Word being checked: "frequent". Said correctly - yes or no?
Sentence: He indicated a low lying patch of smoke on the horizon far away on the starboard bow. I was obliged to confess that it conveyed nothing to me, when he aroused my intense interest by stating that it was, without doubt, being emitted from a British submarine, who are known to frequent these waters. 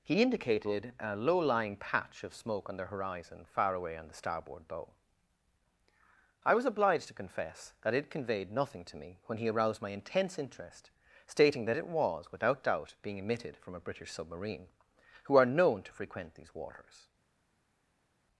yes